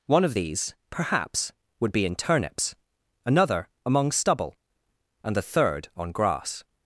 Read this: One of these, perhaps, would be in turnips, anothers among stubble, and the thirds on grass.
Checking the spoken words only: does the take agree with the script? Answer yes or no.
no